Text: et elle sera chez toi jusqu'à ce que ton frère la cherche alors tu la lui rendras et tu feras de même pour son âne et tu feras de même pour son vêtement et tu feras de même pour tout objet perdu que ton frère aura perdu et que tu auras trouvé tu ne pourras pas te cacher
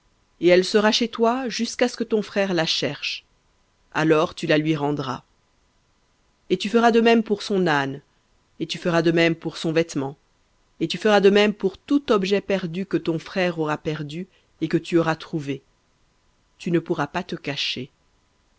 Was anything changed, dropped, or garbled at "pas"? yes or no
no